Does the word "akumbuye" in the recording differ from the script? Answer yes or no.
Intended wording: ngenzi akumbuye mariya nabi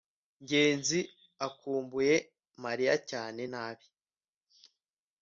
no